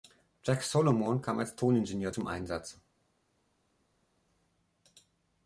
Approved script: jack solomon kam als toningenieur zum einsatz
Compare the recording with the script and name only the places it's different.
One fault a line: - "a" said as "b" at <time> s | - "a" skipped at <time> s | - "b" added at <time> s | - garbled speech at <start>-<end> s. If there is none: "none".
none